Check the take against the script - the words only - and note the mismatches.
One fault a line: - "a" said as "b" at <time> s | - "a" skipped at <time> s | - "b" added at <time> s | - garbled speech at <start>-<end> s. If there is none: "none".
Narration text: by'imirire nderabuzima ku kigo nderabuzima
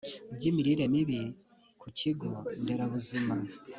- "nderabuzima" said as "mibi" at 0.9 s